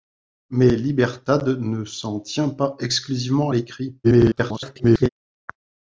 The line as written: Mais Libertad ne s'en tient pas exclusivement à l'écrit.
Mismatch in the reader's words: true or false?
true